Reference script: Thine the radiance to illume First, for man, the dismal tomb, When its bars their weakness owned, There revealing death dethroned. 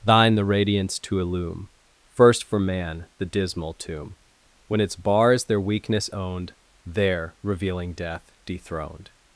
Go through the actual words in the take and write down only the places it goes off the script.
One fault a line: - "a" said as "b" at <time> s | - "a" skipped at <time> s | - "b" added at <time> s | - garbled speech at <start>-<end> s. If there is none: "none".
none